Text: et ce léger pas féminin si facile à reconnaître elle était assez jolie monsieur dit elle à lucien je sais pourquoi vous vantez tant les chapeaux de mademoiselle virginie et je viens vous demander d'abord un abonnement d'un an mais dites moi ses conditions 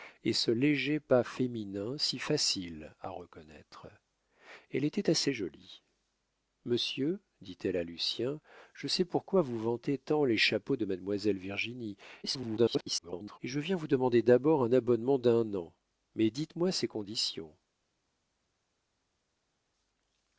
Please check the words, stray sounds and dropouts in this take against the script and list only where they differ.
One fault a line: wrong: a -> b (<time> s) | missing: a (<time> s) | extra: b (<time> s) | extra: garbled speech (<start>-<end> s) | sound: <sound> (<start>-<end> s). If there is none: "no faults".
extra: garbled speech (12.2-13.4 s)